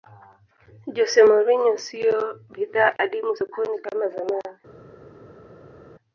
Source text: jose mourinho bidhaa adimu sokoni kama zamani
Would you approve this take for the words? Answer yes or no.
no